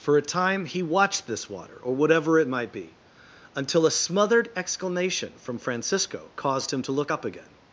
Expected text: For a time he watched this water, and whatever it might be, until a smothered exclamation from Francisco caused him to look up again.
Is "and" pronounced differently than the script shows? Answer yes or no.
yes